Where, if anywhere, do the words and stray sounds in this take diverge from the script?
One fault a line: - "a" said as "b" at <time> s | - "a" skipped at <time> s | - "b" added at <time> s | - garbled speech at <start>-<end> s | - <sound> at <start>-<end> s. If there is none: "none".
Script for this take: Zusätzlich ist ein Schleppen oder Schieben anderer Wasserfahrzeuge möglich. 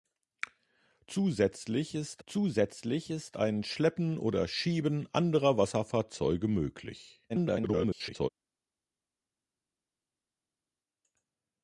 - "zusätzlich ist" added at 2.2 s
- garbled speech at 7.3-8.3 s